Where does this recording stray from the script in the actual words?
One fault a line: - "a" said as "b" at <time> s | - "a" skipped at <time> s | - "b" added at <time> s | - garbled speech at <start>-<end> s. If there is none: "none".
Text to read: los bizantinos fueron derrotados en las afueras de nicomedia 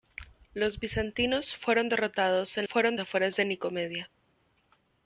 - "las" said as "fueron" at 2.6 s